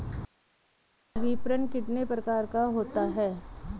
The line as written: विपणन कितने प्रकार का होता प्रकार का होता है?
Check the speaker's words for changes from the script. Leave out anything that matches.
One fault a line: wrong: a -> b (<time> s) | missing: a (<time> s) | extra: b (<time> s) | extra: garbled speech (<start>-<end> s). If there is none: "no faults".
missing: प्रकार का होता (3.0 s)